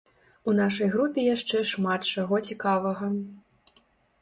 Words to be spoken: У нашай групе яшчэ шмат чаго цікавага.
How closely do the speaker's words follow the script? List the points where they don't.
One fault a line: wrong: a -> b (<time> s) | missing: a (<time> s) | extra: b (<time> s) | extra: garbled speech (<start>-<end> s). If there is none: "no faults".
no faults